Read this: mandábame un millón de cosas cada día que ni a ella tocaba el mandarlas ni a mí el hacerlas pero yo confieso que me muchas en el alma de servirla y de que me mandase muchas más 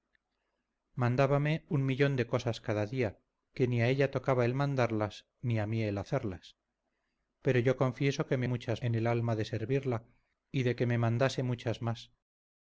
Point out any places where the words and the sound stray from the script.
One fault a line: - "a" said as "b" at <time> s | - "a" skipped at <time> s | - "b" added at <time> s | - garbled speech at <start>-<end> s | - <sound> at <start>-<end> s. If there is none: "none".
none